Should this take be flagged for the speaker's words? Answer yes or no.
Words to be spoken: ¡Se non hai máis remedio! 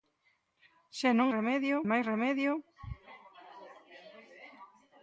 yes